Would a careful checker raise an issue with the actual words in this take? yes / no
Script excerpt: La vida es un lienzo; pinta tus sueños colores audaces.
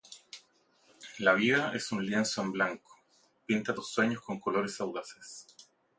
yes